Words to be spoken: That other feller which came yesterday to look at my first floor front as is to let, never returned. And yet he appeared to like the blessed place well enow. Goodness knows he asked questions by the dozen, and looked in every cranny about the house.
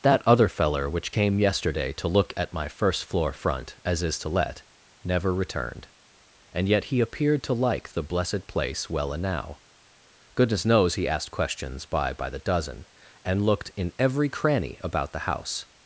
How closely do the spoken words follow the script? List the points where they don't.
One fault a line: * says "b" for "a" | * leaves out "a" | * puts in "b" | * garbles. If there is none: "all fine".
* puts in "by"